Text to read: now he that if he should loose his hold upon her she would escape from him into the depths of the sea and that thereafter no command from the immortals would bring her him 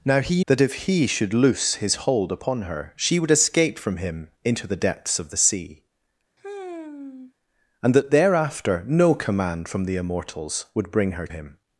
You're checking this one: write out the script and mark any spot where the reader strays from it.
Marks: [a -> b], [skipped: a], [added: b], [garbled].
now he that if he should loose his hold upon her she would escape from him into the depths of the sea and that thereafter no command from the immortals would bring her him